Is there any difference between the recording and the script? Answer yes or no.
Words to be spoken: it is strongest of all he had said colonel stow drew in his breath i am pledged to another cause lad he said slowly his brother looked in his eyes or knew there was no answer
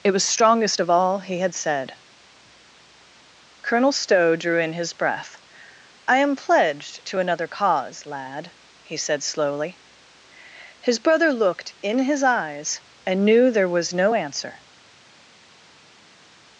yes